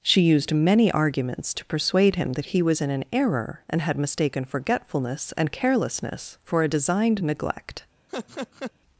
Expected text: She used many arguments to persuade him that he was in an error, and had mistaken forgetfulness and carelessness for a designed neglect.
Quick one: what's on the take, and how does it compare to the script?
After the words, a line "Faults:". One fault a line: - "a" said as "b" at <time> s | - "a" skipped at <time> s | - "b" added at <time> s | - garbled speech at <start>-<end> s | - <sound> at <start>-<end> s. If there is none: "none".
She used many arguments to persuade him that he was in an error, and had mistaken forgetfulness and carelessness for a designed neglect.
Faults:
- laugh at 8.1-8.7 s